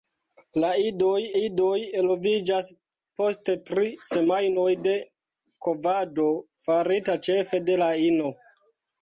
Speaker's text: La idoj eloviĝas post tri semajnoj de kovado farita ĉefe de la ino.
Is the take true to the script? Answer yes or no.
no